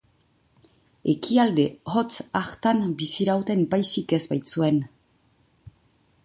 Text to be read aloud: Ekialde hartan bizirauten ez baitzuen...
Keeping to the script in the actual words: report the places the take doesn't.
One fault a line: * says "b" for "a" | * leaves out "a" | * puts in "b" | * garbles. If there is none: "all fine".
* puts in "hotz"
* puts in "baizik"